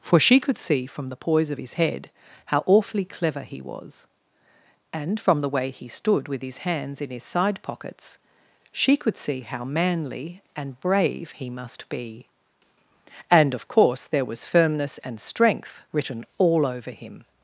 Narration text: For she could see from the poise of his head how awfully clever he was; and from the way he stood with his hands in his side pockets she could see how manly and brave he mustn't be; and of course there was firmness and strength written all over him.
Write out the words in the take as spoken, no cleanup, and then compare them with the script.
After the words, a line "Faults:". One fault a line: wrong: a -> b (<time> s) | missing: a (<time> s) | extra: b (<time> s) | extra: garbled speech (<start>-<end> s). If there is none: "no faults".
For she could see from the poise of his head how awfully clever he was; and from the way he stood with his hands in his side pockets she could see how manly and brave he must be; and of course there was firmness and strength written all over him.
Faults:
wrong: mustn't -> must (11.5 s)